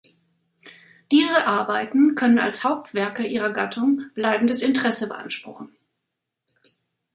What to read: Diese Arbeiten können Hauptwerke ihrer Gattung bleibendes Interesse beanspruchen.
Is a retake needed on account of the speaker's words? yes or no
yes